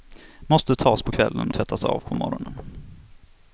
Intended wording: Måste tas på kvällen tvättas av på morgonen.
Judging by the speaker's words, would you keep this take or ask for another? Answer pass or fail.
pass